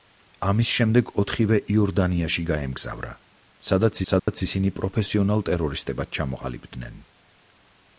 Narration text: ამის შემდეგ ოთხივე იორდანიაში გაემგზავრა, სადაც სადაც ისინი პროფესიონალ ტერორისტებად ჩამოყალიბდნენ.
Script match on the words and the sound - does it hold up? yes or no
no